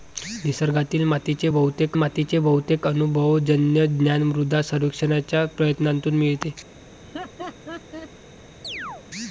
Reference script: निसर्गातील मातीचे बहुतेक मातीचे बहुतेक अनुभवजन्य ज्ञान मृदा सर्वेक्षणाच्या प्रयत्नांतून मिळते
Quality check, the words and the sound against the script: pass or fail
fail